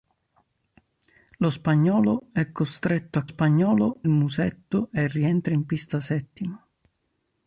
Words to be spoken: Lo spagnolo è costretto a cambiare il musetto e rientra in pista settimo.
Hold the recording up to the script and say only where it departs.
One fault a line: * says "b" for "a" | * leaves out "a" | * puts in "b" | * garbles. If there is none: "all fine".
* says "spagnolo" for "cambiare"